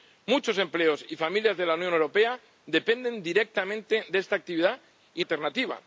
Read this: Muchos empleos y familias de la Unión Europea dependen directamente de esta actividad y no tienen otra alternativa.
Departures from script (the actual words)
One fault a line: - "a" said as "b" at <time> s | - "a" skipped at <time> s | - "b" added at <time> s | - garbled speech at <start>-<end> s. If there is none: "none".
- "no tienen otra" skipped at 5.2 s